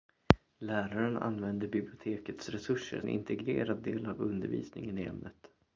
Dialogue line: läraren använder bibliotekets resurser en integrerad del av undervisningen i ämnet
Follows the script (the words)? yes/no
yes